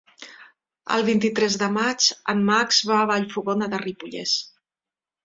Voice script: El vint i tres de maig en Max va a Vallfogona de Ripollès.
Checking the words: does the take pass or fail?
pass